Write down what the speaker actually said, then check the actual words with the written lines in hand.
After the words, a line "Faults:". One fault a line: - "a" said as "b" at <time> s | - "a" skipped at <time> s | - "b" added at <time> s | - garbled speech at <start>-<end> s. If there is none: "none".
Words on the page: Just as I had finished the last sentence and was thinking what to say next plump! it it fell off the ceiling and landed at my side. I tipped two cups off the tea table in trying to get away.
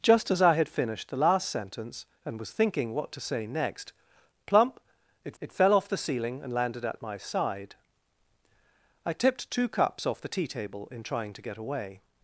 Just as I had finished the last sentence and was thinking what to say next plump! it it fell off the ceiling and landed at my side. I tipped two cups off the tea table in trying to get away.
Faults:
none